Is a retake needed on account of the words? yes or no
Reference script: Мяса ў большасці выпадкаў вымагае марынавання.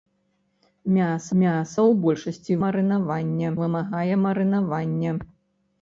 yes